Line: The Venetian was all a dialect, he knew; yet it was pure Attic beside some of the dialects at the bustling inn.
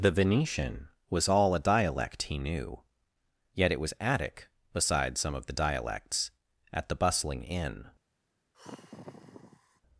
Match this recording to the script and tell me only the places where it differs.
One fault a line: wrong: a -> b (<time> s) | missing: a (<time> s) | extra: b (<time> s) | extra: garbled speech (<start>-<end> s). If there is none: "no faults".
missing: pure (3.9 s)